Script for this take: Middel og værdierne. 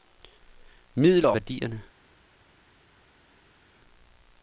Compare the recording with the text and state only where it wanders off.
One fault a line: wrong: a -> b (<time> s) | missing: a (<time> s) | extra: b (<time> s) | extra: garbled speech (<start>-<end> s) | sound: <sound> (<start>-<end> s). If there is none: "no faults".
no faults